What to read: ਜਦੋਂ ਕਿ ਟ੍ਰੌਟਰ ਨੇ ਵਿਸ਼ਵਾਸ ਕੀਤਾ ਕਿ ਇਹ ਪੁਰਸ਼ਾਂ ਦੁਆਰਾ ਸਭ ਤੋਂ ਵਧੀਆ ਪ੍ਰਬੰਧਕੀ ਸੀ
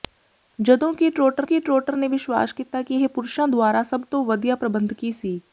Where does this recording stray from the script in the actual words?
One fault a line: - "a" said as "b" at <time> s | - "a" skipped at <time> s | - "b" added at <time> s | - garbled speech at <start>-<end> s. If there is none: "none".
- "ਕਿ ਟ੍ਰੌਟਰ" added at 1.4 s